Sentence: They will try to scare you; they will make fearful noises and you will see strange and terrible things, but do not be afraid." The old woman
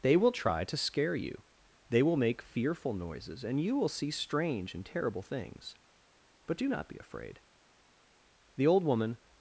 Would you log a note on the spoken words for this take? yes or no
no